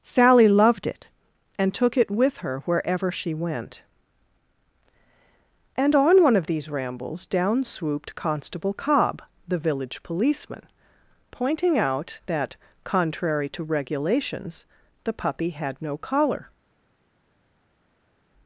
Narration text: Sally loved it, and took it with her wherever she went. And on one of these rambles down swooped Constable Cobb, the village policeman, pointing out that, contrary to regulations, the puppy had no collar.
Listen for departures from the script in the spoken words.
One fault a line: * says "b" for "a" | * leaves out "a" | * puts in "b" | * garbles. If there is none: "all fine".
all fine